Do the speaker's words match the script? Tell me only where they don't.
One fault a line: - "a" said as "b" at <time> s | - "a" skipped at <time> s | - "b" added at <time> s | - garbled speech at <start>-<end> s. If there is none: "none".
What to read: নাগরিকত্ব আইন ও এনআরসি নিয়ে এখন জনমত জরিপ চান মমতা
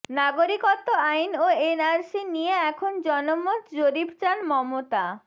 none